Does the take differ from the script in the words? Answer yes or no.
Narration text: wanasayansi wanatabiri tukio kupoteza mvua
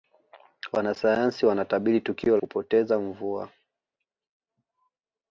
no